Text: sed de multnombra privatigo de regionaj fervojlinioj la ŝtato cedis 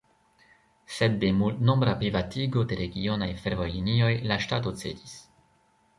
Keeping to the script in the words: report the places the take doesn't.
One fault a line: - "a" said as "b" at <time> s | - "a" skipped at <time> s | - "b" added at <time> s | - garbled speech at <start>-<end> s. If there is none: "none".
none